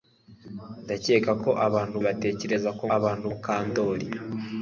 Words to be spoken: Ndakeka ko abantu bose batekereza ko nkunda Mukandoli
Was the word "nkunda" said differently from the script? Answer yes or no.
yes